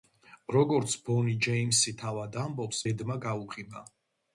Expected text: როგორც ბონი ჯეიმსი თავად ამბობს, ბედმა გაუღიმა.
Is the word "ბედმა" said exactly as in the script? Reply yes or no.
yes